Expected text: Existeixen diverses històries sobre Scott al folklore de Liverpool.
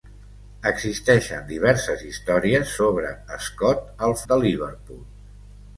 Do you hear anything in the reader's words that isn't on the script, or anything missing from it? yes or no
yes